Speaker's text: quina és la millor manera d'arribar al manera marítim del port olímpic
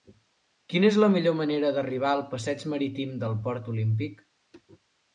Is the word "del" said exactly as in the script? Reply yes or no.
yes